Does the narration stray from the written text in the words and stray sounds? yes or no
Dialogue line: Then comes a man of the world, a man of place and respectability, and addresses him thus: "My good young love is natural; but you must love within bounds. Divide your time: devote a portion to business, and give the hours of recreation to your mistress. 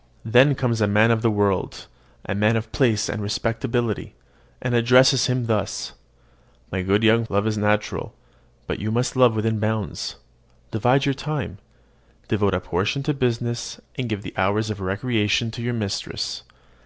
no